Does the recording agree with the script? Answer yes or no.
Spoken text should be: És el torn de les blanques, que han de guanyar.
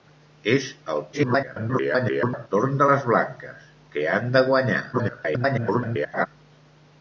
no